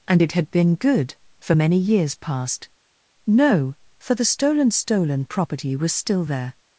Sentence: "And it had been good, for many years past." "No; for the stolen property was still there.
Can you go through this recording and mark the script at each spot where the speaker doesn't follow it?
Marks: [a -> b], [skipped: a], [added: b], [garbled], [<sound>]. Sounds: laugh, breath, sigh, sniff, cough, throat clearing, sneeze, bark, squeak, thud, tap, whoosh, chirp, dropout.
"And it had been good, for many years past." "No; for the stolen [added: stolen] property was still there.